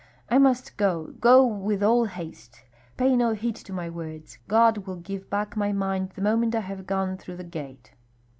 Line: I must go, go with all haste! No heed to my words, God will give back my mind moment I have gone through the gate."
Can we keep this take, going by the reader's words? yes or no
no